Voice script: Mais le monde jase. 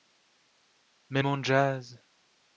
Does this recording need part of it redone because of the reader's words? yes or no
yes